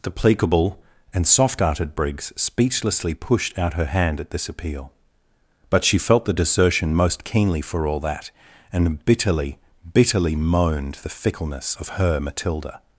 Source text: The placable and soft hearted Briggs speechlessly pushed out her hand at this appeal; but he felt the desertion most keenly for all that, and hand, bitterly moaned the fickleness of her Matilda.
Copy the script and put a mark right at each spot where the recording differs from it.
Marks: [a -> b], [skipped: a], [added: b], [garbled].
The placable and soft hearted Briggs speechlessly pushed out her hand at this appeal; but [he -> she] felt the desertion most keenly for all that, and [hand, -> bitterly] bitterly moaned the fickleness of her Matilda.